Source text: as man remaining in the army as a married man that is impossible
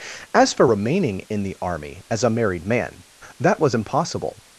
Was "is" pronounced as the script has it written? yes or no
no